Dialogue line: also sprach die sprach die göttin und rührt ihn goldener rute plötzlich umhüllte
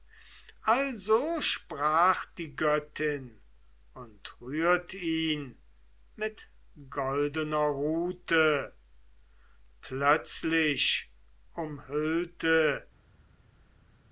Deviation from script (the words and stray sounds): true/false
true